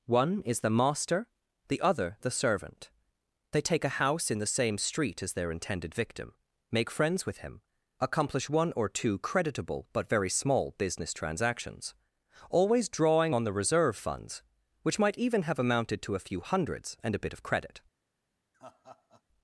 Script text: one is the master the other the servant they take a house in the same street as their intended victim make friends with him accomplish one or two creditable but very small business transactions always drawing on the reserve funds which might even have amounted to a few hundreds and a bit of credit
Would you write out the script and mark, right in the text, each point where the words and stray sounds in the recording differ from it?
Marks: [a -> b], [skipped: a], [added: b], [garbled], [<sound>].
one is the master the other the servant they take a house in the same street as their intended victim make friends with him accomplish one or two creditable but very small business transactions always drawing on the reserve funds which might even have amounted to a few hundreds and a bit of credit [laugh]